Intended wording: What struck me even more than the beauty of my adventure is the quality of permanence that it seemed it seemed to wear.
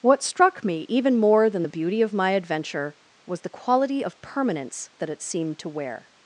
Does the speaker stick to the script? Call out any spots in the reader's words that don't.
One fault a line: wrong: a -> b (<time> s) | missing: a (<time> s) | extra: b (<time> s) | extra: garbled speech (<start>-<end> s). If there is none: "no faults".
wrong: is -> was (3.2 s)
missing: it seemed (5.6 s)